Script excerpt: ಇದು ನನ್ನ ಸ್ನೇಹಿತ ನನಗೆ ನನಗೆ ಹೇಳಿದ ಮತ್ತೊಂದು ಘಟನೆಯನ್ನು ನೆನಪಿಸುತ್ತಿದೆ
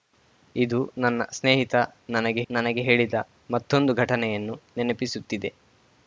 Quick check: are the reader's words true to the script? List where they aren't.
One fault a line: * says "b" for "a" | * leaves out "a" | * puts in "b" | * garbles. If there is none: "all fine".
all fine